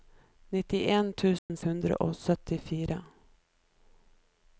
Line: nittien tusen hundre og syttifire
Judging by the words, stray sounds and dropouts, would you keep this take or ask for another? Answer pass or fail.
fail